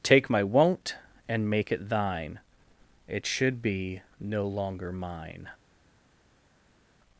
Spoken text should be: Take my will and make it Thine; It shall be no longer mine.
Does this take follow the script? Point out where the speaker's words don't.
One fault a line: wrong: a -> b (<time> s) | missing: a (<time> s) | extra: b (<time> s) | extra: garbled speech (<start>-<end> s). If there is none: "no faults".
wrong: will -> won't (0.4 s)
wrong: shall -> should (3.3 s)